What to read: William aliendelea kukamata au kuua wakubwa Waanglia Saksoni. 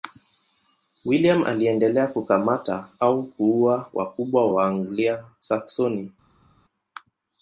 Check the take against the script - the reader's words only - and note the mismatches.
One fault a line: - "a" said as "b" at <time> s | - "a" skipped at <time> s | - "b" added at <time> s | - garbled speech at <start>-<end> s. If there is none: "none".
none